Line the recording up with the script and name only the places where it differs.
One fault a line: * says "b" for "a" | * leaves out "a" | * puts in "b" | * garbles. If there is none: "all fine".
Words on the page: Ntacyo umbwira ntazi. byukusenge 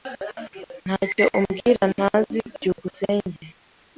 all fine